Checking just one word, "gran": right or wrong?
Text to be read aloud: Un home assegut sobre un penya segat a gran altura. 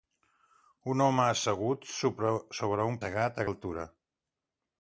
wrong